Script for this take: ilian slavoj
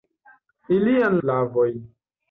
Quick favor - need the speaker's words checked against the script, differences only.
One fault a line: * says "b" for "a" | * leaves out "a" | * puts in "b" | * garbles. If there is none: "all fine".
all fine